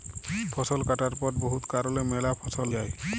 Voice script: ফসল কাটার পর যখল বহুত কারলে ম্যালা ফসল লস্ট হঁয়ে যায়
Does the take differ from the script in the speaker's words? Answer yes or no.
yes